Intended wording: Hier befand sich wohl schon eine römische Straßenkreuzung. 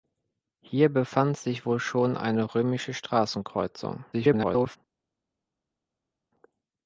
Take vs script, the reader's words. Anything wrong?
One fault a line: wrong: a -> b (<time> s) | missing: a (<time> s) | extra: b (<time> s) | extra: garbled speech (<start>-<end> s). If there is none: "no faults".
extra: garbled speech (4.1-4.8 s)